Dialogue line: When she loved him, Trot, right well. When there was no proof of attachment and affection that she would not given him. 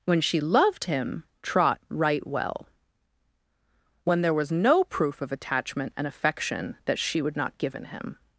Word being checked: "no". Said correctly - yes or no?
yes